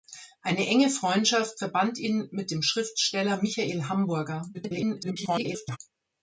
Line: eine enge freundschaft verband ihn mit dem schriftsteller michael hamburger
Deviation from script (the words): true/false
true